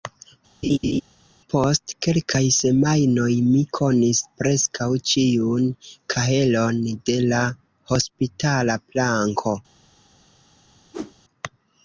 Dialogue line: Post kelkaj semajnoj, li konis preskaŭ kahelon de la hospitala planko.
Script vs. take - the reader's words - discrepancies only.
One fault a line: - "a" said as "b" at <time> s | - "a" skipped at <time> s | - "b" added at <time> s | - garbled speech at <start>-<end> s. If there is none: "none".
- "li" said as "mi" at 3.5 s
- "ĉiun" added at 5.1 s